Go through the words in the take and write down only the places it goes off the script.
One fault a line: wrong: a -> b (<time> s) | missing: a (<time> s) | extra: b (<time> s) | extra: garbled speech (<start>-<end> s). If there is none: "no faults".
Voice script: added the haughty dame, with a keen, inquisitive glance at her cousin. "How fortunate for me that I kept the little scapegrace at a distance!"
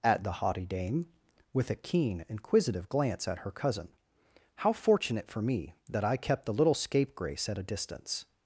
no faults